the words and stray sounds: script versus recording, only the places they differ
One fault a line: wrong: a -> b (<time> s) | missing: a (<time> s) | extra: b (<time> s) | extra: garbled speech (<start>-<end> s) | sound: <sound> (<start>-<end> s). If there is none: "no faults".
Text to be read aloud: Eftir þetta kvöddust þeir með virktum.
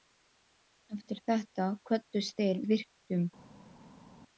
missing: með (2.6 s)